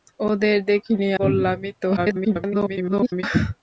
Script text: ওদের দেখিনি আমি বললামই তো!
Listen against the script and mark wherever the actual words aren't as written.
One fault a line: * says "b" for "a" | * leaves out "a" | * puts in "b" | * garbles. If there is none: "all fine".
* leaves out "আমি"
* garbles